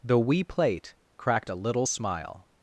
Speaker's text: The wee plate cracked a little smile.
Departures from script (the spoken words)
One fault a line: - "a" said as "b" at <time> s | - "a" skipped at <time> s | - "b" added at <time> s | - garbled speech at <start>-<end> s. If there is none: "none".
none